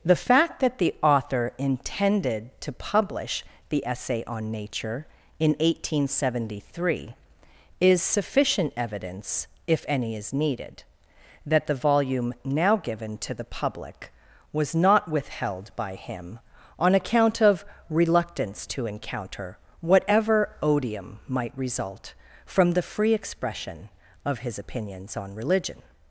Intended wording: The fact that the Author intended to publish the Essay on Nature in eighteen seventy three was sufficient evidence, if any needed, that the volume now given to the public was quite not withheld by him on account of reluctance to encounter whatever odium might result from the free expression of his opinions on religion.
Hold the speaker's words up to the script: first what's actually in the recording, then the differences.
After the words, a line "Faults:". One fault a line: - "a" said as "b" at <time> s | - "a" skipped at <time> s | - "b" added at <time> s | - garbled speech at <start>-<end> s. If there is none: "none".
The fact that the Author intended to publish the Essay on Nature in eighteen seventy three is sufficient evidence, if any is needed, that the volume now given to the public was not withheld by him on account of reluctance to encounter whatever odium might result from the free expression of his opinions on religion.
Faults:
- "was" said as "is" at 7.8 s
- "is" added at 10.2 s
- "quite" skipped at 14.8 s